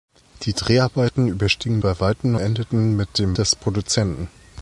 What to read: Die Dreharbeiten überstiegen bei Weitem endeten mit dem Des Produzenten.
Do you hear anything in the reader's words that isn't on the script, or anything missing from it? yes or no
no